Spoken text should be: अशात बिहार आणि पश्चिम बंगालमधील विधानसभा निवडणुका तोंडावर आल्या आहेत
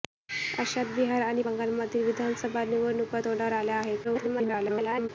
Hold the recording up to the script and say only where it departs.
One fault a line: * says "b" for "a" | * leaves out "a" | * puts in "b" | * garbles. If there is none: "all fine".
* leaves out "पश्चिम"
* garbles